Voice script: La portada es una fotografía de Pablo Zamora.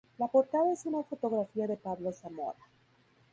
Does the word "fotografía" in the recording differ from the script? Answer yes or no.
no